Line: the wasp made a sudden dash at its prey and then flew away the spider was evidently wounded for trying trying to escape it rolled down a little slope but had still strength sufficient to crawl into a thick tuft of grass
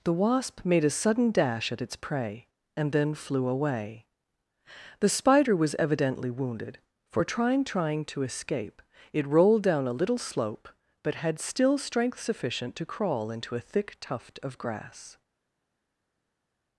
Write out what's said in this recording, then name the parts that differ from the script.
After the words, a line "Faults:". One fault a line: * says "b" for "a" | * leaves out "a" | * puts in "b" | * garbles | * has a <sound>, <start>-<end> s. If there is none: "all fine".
the wasp made a sudden dash at its prey and then flew away the spider was evidently wounded for trying trying to escape it rolled down a little slope but had still strength sufficient to crawl into a thick tuft of grass
Faults:
all fine